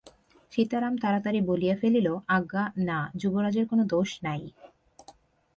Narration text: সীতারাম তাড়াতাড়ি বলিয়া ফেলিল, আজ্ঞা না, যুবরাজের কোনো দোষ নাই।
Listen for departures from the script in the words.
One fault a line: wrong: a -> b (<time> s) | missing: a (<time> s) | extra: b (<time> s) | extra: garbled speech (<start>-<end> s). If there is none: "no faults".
no faults